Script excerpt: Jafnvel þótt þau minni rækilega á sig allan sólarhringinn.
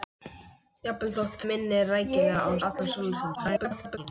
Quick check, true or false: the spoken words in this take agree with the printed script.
false